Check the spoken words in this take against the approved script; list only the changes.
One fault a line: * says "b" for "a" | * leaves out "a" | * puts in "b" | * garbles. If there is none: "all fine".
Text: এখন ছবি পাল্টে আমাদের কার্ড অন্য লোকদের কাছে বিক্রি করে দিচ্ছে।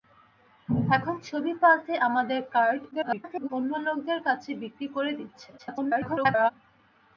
* garbles
* garbles